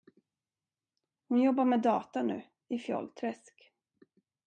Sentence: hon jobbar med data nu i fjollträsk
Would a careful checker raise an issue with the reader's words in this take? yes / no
no